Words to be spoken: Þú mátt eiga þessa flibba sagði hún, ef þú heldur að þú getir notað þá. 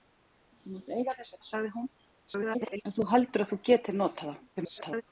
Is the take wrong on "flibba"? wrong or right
wrong